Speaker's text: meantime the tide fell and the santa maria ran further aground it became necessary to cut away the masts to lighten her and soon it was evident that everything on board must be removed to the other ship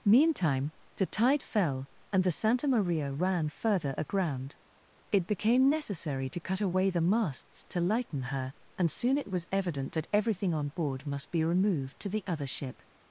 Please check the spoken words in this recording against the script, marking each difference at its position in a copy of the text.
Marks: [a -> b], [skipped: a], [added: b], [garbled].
meantime the tide fell and the santa maria ran further aground it became necessary to cut away the masts to lighten her and soon it was evident that everything on board must be removed to the other ship